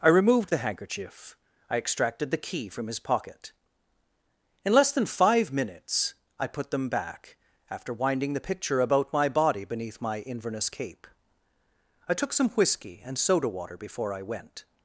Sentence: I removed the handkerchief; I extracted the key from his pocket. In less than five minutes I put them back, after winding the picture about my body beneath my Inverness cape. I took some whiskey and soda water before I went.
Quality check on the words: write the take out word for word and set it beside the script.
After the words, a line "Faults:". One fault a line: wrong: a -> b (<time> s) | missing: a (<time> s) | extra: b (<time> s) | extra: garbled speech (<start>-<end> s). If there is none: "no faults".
I removed the handkerchief; I extracted the key from his pocket. In less than five minutes I put them back, after winding the picture about my body beneath my Inverness cape. I took some whiskey and soda water before I went.
Faults:
no faults